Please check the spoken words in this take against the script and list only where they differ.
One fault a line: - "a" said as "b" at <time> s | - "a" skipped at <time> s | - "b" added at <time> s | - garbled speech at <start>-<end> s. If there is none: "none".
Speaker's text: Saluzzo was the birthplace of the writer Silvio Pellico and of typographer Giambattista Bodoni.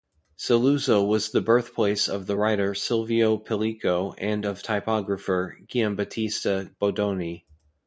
none